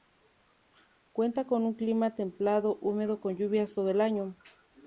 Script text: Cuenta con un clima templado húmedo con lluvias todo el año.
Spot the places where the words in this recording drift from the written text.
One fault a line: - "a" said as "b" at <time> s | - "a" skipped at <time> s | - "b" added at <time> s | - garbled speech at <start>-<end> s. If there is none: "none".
none